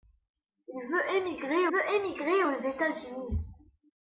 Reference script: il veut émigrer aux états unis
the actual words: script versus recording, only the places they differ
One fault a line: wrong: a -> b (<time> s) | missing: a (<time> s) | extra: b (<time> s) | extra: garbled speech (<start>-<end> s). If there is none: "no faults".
extra: veut émigrer (1.7 s)